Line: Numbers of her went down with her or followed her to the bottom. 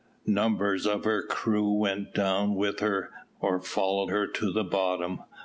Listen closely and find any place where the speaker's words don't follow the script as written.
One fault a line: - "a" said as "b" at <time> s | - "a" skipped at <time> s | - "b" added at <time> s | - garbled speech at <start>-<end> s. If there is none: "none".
- "crew" added at 1.2 s